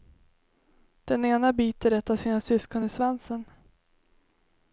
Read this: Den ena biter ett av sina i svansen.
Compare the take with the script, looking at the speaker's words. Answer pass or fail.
fail